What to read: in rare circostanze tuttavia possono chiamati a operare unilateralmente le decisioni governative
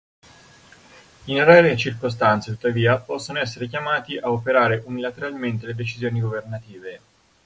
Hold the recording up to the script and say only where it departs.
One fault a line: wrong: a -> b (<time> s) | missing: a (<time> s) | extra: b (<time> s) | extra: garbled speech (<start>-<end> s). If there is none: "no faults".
extra: essere (3.4 s)